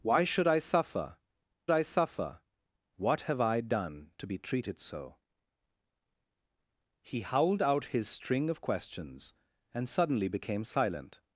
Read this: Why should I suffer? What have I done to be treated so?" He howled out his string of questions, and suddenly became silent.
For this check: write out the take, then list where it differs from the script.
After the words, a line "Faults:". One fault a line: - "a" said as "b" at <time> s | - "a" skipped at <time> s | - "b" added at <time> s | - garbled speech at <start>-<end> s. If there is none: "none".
Why should I suffer I suffer? What have I done to be treated so?" He howled out his string of questions, and suddenly became silent.
Faults:
- "I suffer" added at 1.7 s